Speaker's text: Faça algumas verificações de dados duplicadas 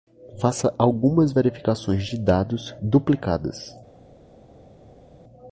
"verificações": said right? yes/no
yes